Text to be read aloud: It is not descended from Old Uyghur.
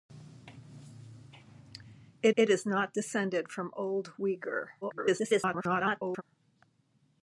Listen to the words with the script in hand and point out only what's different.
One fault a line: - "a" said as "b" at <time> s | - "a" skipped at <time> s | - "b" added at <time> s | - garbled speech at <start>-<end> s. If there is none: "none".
- "it" added at 2.4 s
- garbled speech at 4.8-6.2 s